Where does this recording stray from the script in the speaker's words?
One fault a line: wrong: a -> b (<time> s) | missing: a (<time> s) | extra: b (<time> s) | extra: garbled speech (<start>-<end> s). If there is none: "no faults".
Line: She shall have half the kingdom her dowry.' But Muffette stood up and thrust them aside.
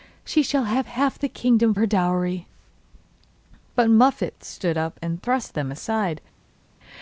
no faults